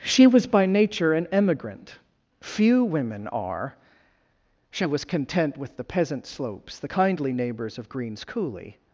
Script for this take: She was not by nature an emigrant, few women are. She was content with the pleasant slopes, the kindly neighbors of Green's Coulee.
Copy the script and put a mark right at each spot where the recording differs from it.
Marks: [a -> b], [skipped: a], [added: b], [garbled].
She was [skipped: not] by nature an emigrant, few women are. She was content with the [pleasant -> peasant] slopes, the kindly neighbors of Green's Coulee.